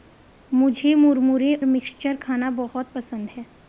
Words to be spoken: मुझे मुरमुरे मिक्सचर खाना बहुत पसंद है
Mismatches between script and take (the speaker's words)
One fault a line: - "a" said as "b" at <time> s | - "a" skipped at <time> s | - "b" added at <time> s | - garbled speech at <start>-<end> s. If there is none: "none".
none